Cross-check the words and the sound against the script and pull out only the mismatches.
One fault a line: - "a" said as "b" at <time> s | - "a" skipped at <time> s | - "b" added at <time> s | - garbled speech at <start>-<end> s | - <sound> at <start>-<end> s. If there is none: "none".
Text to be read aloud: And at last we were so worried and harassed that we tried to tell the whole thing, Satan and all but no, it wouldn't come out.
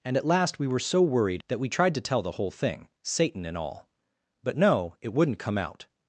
- "and harassed" skipped at 1.4 s